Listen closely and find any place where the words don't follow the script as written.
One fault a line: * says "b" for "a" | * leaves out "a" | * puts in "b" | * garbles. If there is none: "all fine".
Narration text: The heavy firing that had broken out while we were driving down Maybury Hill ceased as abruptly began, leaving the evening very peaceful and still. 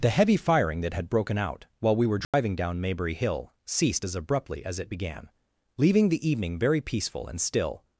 * puts in "as it"